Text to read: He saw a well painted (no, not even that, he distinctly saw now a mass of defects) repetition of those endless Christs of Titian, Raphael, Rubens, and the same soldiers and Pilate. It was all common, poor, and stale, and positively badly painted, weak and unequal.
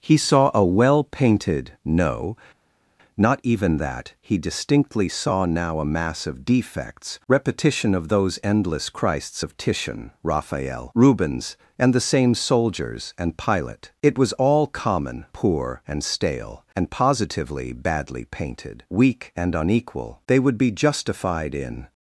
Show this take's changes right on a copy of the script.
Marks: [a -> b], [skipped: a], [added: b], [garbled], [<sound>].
He saw a well painted (no, not even that, he distinctly saw now a mass of defects) repetition of those endless Christs of Titian, Raphael, Rubens, and the same soldiers and Pilate. It was all common, poor, and stale, and positively badly painted, weak and unequal. [added: They would be justified in]